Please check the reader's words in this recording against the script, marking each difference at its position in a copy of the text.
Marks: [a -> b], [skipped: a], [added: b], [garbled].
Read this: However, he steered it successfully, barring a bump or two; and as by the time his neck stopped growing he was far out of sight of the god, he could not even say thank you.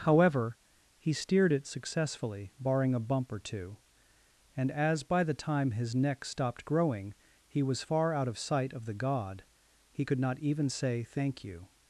However, he steered it successfully, barring a bump or two; and as by the time his neck stopped growing he was far out of sight of the god, he could not even say thank you.